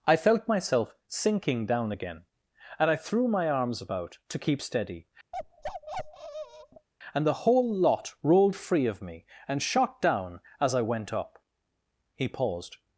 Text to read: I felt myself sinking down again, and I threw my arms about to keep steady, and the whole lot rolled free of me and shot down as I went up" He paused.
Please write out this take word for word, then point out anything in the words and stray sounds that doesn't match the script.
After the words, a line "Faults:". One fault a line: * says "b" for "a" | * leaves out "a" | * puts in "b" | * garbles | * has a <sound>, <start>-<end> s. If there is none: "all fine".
I felt myself sinking down again, and I threw my arms about to keep steady, and the whole lot rolled free of me and shot down as I went up" He paused.
Faults:
* has a bark, 5.3-6.9 s